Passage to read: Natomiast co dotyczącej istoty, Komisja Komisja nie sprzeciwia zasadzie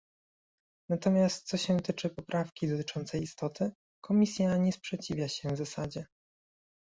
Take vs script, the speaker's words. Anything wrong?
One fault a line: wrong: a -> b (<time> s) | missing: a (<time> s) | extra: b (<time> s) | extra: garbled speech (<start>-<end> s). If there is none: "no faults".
extra: się tyczy poprawki (1.6 s)
missing: Komisja (4.6 s)
extra: się (5.3 s)